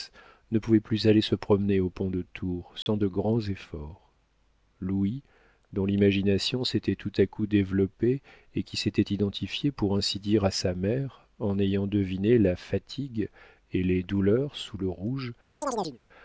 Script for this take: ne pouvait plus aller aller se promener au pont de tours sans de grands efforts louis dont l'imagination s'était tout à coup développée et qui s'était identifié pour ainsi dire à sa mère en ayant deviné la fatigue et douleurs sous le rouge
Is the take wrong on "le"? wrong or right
right